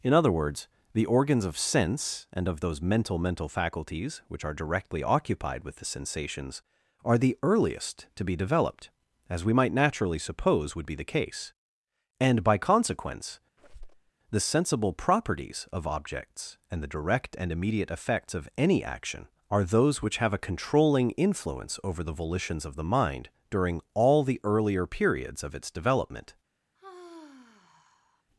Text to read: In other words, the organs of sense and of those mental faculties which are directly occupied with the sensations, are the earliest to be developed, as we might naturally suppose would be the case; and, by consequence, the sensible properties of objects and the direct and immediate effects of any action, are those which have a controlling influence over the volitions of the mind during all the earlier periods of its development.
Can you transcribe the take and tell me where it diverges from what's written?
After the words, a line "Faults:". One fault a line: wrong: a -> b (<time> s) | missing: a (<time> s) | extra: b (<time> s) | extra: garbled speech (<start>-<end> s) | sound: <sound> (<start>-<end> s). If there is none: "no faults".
In other words, the organs of sense and of those mental mental faculties which are directly occupied with the sensations, are the earliest to be developed, as we might naturally suppose would be the case; and, by consequence, the sensible properties of objects and the direct and immediate effects of any action, are those which have a controlling influence over the volitions of the mind during all the earlier periods of its development.
Faults:
extra: mental (3.2 s)
sound: squeak (13.6-14.1 s)
sound: sigh (26.7-28.2 s)